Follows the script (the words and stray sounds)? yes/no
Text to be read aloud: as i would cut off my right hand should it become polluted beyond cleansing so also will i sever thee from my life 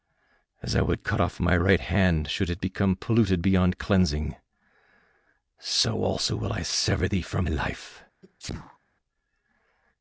no